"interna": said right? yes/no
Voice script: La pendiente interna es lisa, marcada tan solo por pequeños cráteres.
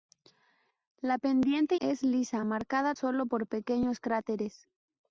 no